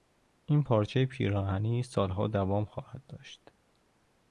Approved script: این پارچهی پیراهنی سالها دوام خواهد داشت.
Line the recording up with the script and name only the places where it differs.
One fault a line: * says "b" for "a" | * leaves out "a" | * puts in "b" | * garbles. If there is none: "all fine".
all fine